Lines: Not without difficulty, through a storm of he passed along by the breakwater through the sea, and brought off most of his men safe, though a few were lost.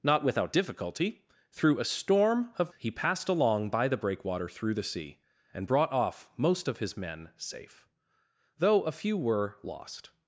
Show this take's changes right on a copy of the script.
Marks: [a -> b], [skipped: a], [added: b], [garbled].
Not without difficulty, through a storm of he passed along by the breakwater through the sea, and brought off most of his men safe, though a few were lost.